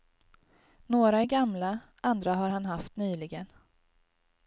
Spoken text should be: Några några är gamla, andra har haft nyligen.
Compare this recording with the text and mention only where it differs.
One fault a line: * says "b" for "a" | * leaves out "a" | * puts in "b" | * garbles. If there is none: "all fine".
* leaves out "några"
* puts in "han"